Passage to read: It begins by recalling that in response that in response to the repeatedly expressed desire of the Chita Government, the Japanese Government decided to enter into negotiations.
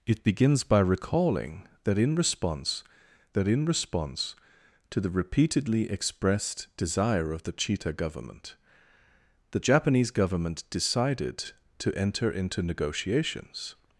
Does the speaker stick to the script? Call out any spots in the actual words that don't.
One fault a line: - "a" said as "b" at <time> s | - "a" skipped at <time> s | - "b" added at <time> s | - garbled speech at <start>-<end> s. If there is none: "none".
none